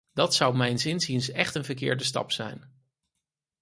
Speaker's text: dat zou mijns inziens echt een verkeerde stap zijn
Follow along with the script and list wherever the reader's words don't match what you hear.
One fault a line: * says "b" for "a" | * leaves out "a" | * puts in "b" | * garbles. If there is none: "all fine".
all fine